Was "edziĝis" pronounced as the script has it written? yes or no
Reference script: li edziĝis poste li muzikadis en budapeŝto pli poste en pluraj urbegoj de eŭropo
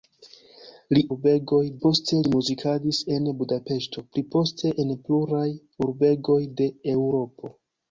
no